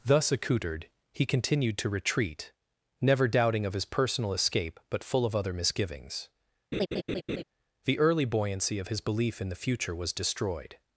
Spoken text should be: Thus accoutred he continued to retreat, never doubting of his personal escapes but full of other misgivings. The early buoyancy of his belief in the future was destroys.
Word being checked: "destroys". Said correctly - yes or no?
no